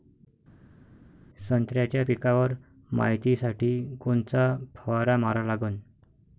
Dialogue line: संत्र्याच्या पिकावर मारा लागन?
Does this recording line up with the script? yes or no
no